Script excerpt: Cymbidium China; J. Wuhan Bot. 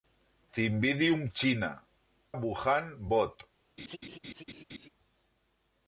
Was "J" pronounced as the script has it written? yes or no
no